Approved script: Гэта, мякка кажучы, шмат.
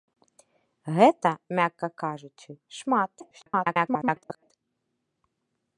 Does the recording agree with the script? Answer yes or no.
no